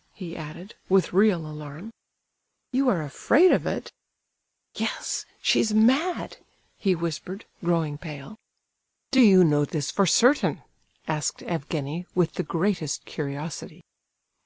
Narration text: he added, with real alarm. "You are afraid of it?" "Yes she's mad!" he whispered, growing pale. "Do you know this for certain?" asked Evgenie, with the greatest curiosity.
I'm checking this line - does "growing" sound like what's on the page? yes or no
yes